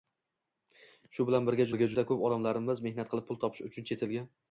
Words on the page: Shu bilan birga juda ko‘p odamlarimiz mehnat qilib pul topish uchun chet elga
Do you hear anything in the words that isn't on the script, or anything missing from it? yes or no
yes